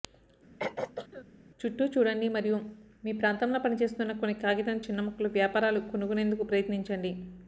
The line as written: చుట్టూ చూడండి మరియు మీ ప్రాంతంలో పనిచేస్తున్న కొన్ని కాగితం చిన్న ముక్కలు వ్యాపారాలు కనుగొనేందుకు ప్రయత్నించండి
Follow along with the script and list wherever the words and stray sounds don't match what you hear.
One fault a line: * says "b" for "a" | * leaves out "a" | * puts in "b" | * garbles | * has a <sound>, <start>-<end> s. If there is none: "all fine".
* has a throat clearing, 0.6-1.3 s